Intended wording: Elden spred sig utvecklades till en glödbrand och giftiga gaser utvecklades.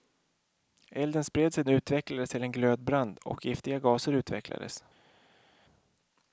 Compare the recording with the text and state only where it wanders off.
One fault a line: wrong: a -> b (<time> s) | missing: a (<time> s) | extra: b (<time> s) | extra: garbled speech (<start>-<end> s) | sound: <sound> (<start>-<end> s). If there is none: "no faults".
no faults